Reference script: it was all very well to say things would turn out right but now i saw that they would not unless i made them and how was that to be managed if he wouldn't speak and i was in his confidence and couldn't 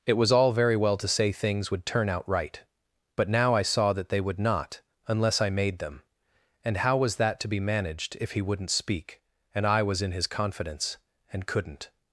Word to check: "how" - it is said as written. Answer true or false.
true